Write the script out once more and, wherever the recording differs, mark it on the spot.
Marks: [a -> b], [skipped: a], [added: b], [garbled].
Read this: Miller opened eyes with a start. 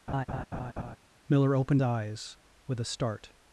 Miller opened eyes with a start.